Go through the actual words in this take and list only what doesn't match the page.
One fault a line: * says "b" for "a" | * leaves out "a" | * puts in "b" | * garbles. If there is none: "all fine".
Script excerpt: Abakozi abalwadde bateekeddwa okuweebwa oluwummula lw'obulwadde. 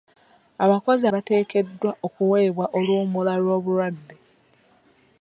* leaves out "abalwadde"